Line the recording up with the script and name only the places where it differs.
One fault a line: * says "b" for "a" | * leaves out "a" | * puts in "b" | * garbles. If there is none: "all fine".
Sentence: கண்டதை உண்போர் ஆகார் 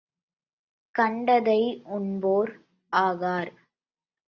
all fine